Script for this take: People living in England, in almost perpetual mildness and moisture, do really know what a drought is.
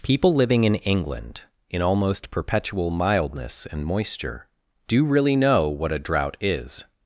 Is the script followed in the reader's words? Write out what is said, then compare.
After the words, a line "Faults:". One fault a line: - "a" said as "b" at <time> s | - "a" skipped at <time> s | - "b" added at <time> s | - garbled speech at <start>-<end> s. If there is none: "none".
People living in England, in almost perpetual mildness and moisture, do really know what a drought is.
Faults:
none